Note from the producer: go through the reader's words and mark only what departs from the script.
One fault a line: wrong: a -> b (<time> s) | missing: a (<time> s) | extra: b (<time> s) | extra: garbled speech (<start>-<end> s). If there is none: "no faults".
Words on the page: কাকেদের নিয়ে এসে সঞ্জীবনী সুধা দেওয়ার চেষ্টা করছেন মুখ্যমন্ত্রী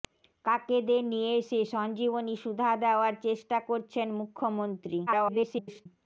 extra: garbled speech (5.1-5.9 s)